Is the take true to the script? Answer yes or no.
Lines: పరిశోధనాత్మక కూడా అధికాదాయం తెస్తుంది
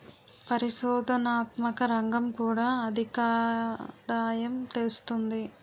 no